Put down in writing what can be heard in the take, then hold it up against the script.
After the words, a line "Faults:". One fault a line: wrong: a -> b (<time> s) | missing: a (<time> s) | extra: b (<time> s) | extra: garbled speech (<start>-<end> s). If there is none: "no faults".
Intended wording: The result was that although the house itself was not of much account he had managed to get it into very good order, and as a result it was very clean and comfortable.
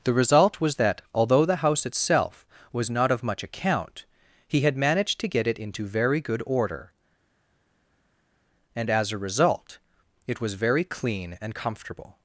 The result was that although the house itself was not of much account he had managed to get it into very good order, and as a result it was very clean and comfortable.
Faults:
no faults